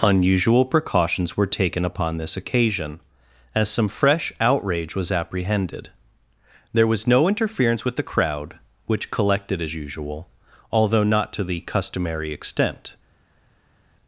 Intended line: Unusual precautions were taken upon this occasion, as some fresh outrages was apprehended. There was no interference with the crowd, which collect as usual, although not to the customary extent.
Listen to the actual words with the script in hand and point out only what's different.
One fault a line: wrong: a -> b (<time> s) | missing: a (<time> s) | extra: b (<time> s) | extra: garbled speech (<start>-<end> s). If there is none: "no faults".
wrong: outrages -> outrage (4.4 s)
wrong: collect -> collected (9.1 s)